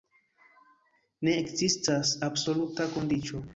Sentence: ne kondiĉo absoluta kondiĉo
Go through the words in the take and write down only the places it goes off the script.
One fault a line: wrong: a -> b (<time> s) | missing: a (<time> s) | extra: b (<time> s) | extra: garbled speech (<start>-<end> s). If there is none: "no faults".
wrong: kondiĉo -> ekzistas (1.4 s)